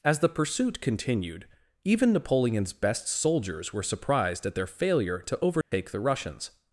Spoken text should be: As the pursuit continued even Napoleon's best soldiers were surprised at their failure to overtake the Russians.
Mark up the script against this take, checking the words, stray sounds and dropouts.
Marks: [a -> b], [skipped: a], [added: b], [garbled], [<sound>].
As the pursuit continued even Napoleon's best soldiers were surprised at their failure to overtake [dropout] the Russians.